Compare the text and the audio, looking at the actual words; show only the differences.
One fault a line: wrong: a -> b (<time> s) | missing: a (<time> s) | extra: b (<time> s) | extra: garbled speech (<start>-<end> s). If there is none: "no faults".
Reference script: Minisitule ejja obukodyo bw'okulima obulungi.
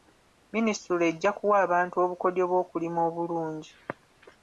extra: kuwa abantu (1.4 s)